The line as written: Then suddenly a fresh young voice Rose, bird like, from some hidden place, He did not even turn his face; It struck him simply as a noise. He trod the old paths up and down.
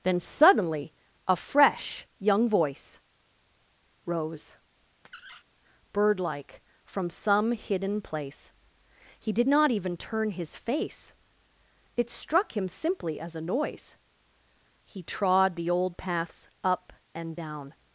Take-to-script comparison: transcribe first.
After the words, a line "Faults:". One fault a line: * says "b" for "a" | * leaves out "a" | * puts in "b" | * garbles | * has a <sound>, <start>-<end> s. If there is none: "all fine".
Then suddenly a fresh young voice Rose, bird like, from some hidden place, He did not even turn his face; It struck him simply as a noise. He trod the old paths up and down.
Faults:
* has a squeak, 5.0-5.4 s